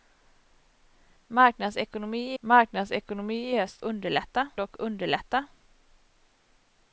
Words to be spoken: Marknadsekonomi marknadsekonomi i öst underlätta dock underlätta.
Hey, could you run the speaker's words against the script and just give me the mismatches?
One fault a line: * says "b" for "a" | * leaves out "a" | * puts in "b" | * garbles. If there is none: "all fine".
all fine